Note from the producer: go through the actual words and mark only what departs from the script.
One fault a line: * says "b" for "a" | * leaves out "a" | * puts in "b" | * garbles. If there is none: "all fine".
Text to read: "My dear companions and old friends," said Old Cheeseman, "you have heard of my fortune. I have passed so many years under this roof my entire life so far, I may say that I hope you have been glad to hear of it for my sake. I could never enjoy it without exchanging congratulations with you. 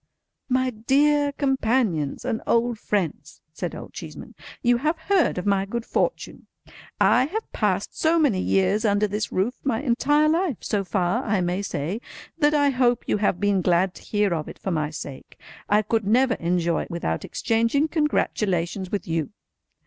* puts in "good"